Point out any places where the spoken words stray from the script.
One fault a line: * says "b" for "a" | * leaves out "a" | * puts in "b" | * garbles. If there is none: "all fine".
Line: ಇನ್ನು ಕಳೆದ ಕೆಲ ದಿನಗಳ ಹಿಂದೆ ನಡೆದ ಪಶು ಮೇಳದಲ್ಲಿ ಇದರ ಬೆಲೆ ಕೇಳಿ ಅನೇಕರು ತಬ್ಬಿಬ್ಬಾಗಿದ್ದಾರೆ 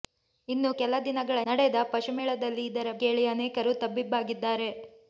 * leaves out "ಕಳೆದ"
* leaves out "ಹಿಂದೆ"
* leaves out "ಬೆಲೆ"